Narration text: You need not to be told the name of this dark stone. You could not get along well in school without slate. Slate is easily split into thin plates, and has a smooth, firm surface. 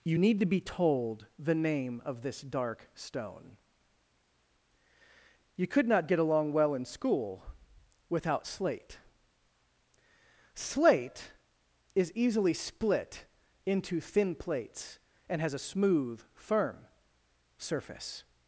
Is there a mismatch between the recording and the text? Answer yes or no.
yes